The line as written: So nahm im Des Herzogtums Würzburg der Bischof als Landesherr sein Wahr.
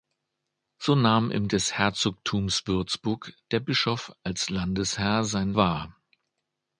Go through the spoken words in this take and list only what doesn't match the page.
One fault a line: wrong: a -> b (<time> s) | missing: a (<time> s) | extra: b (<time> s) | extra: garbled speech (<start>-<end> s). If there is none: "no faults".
no faults